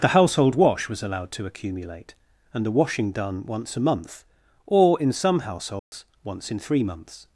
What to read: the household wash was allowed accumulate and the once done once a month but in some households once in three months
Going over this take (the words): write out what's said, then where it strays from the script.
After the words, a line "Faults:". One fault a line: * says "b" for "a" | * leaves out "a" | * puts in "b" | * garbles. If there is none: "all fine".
the household wash was allowed to accumulate and the washing done once a month or in some households once in three months
Faults:
* puts in "to"
* says "washing" for "once"
* says "or" for "but"